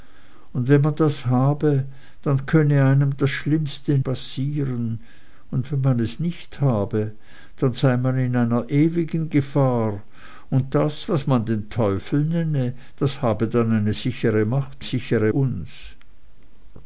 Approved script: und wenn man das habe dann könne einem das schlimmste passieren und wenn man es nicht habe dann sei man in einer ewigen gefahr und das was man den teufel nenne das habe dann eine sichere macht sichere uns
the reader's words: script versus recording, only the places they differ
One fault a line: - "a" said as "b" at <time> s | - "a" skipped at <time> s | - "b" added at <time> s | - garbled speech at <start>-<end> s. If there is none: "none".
none